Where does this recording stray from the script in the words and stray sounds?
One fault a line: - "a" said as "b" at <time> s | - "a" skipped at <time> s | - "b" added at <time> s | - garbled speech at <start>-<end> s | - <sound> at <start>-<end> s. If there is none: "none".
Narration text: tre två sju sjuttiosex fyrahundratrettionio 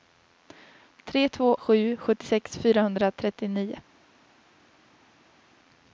none